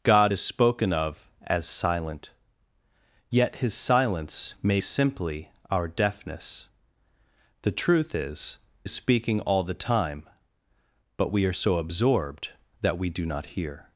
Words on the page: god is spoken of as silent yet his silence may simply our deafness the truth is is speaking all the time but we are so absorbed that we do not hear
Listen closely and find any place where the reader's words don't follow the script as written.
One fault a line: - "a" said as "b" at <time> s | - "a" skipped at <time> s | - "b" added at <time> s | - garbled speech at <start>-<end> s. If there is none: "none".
none